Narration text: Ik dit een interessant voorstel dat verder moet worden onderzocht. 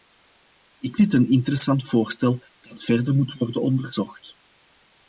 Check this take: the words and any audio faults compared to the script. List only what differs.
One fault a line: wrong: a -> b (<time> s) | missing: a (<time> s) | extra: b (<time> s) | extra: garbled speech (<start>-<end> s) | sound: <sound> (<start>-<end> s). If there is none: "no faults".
no faults